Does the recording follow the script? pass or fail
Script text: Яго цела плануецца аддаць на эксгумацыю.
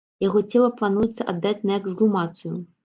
pass